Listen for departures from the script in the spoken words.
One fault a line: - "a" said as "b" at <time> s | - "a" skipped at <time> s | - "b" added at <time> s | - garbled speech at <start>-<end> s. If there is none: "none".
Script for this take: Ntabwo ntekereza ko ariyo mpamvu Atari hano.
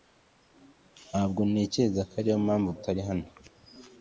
none